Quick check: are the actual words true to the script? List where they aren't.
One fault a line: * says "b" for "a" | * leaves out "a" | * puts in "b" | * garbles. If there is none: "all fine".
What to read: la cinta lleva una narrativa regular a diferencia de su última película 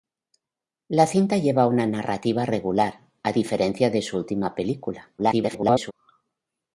* garbles